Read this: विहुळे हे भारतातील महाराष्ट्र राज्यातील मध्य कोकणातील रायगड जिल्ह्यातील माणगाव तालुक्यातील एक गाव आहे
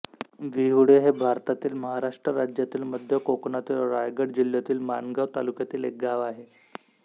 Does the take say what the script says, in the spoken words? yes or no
yes